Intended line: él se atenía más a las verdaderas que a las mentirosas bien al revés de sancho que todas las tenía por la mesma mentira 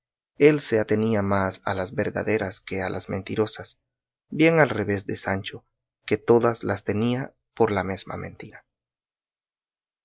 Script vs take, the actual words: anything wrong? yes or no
no